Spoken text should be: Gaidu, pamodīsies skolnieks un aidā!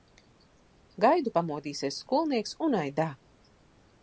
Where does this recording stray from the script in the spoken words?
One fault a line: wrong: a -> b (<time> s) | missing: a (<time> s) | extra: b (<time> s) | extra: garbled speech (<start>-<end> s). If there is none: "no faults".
no faults